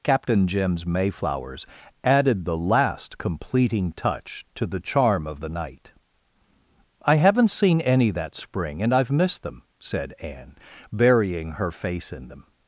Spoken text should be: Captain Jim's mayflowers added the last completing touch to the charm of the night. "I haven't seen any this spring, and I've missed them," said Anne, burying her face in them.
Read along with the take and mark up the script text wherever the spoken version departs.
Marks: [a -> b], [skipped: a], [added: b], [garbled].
Captain Jim's mayflowers added the last completing touch to the charm of the night. "I haven't seen any [this -> that] spring, and I've missed them," said Anne, burying her face in them.